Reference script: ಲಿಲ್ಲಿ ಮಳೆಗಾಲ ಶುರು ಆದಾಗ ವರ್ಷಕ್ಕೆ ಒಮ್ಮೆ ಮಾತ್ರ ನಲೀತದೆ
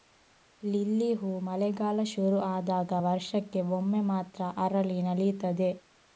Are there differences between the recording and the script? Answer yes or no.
yes